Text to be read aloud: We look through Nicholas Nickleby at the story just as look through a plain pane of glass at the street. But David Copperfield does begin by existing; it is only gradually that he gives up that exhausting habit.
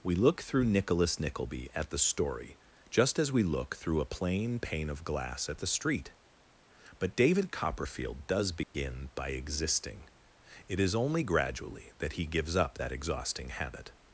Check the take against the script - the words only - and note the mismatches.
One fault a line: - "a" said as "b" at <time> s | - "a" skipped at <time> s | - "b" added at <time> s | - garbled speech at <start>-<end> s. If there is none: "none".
- "we" added at 3.3 s